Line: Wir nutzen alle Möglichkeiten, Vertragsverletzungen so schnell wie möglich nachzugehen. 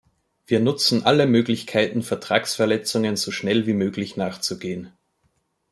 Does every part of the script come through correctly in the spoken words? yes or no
yes